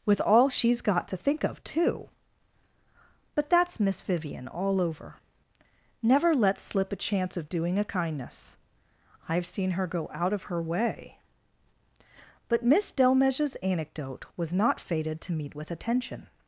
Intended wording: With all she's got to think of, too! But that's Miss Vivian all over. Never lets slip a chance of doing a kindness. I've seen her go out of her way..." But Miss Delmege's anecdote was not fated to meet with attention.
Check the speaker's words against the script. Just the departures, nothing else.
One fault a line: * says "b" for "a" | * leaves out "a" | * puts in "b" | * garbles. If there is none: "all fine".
all fine